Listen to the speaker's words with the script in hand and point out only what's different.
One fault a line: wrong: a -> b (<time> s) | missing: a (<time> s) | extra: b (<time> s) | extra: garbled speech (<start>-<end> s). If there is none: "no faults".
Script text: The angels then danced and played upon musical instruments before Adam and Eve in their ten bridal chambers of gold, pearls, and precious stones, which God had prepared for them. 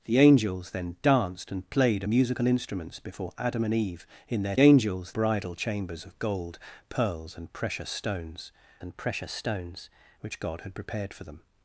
missing: upon (2.0 s)
wrong: ten -> angels (4.6 s)
extra: and precious stones (8.8 s)